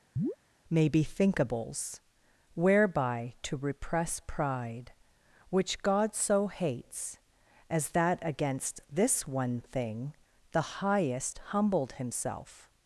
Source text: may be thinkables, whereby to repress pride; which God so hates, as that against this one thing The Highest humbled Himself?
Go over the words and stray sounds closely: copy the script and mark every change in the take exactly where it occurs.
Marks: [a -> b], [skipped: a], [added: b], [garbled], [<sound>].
[chirp] may be thinkables, whereby to repress pride; which God so hates, as that against this one thing The Highest humbled Himself?